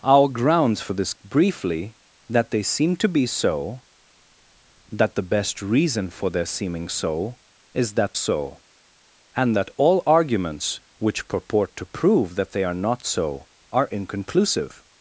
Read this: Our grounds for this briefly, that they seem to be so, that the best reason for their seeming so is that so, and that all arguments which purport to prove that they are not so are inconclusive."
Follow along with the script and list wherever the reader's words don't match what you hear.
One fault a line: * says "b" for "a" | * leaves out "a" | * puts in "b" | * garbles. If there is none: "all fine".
all fine